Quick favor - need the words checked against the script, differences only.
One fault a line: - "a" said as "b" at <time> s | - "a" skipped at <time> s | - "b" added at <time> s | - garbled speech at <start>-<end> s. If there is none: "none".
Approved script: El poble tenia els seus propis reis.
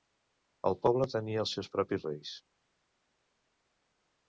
none